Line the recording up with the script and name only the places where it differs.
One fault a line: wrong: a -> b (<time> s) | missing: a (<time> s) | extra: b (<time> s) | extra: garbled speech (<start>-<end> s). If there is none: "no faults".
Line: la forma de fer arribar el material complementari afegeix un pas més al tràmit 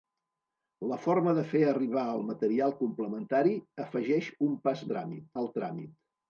wrong: més -> tràmit (4.9 s)